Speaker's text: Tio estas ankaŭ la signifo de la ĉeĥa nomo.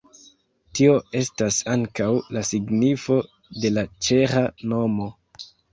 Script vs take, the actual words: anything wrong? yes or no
no